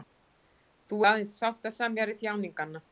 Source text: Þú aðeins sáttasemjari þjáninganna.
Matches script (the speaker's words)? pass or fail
pass